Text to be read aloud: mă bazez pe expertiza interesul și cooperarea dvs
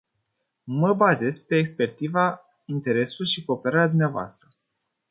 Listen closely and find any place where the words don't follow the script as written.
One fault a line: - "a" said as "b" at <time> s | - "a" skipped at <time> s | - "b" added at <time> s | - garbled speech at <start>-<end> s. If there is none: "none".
none